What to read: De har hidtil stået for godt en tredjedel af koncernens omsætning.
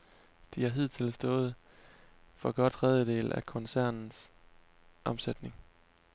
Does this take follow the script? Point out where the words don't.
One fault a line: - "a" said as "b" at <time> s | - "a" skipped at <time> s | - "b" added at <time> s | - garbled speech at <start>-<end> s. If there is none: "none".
- "en" skipped at 2.7 s